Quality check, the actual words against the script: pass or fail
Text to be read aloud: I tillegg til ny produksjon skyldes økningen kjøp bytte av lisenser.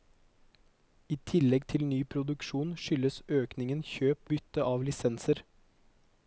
pass